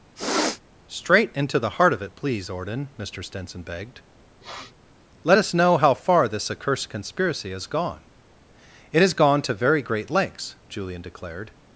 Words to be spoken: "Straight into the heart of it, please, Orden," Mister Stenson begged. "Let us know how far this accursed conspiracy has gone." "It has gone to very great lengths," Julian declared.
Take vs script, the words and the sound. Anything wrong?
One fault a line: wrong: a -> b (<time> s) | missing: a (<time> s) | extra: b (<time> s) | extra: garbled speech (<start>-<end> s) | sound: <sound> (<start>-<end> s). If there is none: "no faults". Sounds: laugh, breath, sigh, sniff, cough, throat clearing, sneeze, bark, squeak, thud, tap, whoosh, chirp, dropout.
sound: sniff (0.2-0.6 s)
sound: sniff (4.4-4.7 s)